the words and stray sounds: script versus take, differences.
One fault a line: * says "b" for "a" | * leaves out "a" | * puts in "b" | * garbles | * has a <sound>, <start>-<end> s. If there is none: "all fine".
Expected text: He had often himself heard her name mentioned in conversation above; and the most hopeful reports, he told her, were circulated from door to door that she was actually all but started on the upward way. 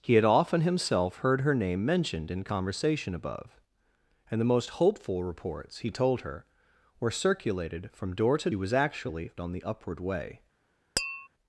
* leaves out "door that she"
* leaves out "all but started"
* has a tap, 11.0-11.3 s